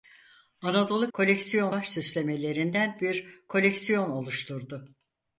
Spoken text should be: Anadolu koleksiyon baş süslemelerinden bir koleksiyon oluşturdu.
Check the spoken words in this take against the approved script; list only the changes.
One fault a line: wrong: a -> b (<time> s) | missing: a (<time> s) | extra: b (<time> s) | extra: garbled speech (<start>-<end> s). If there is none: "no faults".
no faults